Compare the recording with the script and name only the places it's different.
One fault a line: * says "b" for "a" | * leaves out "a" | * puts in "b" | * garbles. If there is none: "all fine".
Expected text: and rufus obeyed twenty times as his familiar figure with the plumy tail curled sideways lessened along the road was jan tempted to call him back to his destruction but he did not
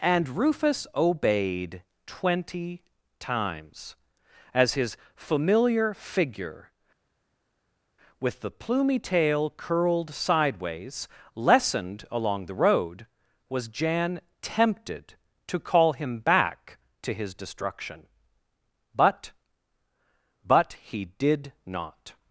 * puts in "but"